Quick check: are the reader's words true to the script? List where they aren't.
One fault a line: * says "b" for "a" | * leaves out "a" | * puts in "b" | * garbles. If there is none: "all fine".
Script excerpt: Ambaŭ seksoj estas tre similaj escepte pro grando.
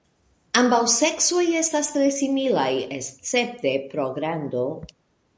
all fine